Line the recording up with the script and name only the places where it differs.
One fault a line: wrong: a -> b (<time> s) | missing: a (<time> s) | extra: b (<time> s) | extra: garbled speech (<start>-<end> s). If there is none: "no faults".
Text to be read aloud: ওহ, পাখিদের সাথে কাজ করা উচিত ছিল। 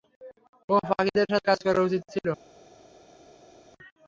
no faults